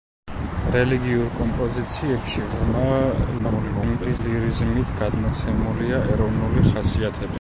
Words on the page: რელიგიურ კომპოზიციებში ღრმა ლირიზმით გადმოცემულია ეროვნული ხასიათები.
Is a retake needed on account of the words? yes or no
yes